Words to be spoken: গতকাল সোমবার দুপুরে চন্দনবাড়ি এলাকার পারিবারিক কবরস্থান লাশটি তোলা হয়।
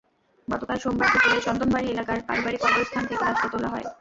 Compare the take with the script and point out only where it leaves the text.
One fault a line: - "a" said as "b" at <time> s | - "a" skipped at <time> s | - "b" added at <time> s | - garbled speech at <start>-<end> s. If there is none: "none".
- "থেকে" added at 3.1 s